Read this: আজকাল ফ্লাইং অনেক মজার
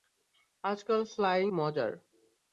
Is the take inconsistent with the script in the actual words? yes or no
yes